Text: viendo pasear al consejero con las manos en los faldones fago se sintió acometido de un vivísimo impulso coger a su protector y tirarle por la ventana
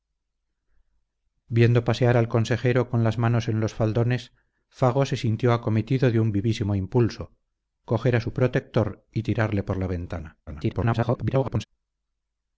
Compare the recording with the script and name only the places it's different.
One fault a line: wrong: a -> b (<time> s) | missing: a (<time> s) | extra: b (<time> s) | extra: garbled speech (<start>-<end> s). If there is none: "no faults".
extra: garbled speech (10.5-11.7 s)